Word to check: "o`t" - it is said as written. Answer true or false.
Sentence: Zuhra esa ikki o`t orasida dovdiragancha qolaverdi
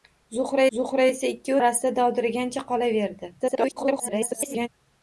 false